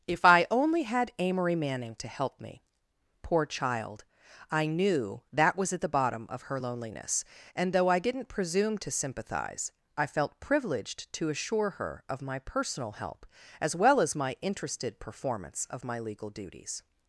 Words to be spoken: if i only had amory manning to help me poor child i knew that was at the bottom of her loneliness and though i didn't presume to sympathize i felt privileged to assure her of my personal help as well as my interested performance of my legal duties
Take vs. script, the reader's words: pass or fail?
pass